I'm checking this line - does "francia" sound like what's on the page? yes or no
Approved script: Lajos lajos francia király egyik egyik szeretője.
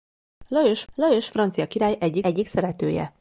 yes